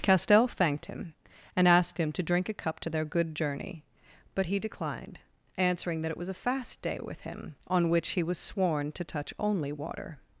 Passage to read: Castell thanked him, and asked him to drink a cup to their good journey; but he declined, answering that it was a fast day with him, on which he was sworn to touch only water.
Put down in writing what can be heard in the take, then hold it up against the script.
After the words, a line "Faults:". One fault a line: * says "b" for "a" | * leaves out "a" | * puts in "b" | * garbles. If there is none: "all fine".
Castell thanked him, and asked him to drink a cup to their good journey; but he declined, answering that it was a fast day with him, on which he was sworn to touch only water.
Faults:
all fine